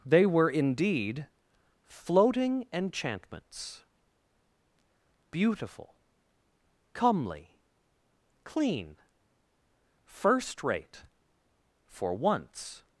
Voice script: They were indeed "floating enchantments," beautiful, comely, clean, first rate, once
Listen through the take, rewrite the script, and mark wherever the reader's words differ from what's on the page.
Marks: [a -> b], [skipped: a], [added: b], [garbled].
They were indeed "floating enchantments," beautiful, comely, clean, first rate, [added: for] once